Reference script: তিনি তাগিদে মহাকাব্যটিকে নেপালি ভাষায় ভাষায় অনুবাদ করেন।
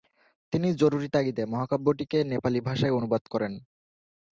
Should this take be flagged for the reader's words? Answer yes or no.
yes